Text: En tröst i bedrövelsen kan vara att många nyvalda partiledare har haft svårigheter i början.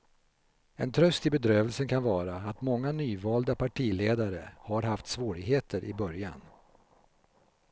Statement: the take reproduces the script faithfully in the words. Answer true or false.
true